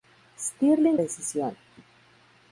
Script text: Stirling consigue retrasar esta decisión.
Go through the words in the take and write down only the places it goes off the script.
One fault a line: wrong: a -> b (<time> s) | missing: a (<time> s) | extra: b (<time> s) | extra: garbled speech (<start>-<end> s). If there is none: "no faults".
missing: consigue retrasar esta (1.0 s)